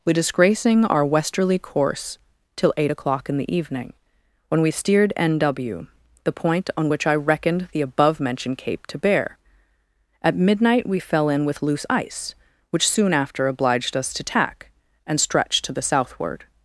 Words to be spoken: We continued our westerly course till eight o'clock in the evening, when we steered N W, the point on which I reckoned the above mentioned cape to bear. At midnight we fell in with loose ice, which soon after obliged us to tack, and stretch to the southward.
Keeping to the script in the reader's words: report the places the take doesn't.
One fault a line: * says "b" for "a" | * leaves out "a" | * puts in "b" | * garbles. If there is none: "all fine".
* says "disgracing" for "continued"